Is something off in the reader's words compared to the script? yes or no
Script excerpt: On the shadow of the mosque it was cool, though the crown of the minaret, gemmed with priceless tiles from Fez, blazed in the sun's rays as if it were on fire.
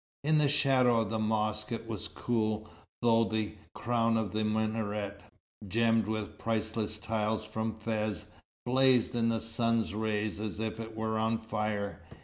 yes